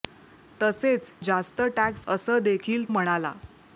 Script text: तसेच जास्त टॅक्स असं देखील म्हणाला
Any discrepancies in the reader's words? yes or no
no